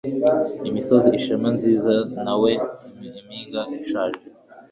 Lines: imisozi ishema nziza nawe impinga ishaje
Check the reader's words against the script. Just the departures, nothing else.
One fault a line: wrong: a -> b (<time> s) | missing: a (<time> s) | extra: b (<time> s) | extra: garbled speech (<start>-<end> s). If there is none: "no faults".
no faults